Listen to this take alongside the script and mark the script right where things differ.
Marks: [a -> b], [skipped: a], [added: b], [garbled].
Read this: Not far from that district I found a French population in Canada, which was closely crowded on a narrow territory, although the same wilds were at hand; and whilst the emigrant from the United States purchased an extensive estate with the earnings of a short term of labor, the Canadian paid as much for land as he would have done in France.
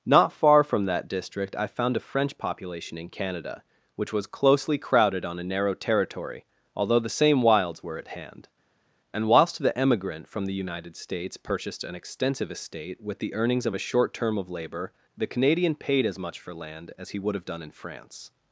Not far from that district I found a French population in Canada, which was closely crowded on a narrow territory, although the same wilds were at hand; and whilst the emigrant from the United States purchased an extensive estate with the earnings of a short term of labor, the Canadian paid as much for land as he would have done in France.